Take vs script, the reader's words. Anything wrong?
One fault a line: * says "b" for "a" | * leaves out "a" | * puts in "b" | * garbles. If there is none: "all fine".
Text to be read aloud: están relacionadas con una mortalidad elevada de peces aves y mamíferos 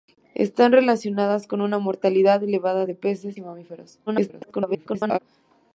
* leaves out "aves"
* garbles